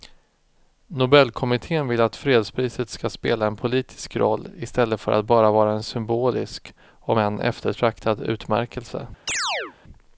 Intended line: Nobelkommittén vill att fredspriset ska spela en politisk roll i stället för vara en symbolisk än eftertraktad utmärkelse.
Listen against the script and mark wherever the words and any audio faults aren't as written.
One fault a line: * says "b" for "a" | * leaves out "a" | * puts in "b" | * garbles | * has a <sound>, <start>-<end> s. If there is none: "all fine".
* puts in "att bara"
* puts in "om"
* has a chirp, 9.3-9.8 s